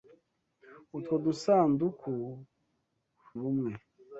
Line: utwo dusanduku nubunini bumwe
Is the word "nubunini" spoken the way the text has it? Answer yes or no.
no